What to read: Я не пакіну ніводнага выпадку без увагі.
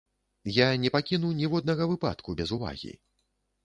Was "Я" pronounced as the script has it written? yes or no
yes